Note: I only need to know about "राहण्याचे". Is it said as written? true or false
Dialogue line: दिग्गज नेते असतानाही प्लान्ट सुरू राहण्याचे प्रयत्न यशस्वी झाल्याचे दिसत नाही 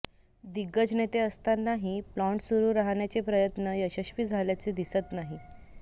true